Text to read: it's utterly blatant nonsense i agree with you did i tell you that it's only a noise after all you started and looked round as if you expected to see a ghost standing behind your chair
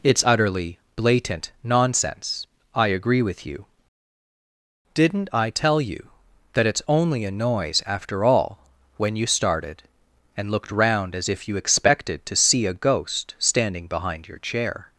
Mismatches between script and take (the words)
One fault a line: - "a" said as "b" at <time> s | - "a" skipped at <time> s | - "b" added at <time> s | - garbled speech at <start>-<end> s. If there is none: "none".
- "did" said as "didn't" at 4.9 s
- "when" added at 9.0 s